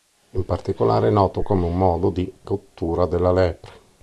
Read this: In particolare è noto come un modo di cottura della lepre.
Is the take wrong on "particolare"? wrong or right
right